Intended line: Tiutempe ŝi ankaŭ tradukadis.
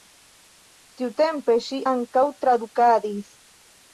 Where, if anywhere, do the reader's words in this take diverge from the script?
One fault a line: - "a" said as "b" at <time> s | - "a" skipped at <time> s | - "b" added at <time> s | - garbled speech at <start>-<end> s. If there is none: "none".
none